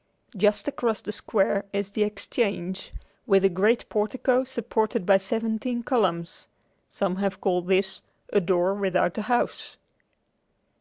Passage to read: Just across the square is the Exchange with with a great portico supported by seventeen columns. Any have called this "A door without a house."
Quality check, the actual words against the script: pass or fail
fail